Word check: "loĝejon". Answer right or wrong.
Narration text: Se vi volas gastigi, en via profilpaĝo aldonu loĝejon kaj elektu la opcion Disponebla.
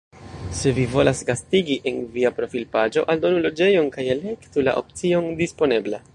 right